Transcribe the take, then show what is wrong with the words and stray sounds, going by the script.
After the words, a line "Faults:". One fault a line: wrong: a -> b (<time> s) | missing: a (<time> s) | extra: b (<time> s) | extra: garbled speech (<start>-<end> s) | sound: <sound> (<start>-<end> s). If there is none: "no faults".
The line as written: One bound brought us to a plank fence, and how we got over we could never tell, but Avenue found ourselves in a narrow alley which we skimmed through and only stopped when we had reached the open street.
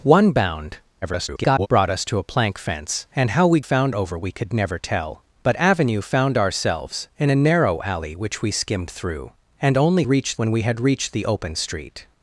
One bound [garbled] brought us to a plank fence, and how we found over we could never tell, but Avenue found ourselves in a narrow alley which we skimmed through and only reached when we had reached the open street.
Faults:
extra: garbled speech (1.0-1.7 s)
wrong: got -> found (3.6 s)
wrong: stopped -> reached (10.1 s)